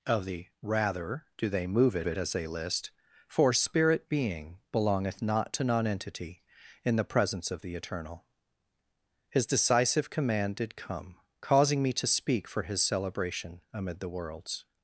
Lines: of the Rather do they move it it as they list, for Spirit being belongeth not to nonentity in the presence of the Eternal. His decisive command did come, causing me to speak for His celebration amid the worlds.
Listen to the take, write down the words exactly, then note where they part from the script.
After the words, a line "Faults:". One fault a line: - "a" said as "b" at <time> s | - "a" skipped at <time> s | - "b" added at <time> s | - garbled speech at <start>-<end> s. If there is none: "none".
of the Rather do they move it it as they list, for Spirit being belongeth not to nonentity in the presence of the Eternal. His decisive command did come, causing me to speak for His celebration amid the worlds.
Faults:
none